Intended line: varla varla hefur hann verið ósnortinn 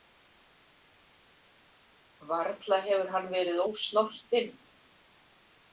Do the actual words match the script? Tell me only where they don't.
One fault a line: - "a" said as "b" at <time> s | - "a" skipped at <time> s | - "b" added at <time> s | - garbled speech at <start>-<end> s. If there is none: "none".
- "varla" skipped at 2.8 s